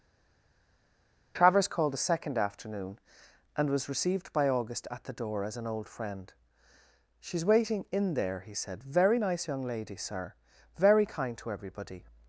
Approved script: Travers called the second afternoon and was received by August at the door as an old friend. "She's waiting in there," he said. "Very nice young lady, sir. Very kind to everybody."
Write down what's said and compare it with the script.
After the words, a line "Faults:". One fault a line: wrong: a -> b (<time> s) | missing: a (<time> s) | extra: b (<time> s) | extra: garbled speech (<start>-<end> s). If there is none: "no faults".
Travers called the second afternoon and was received by August at the door as an old friend. "She's waiting in there," he said. "Very nice young lady, sir. Very kind to everybody."
Faults:
no faults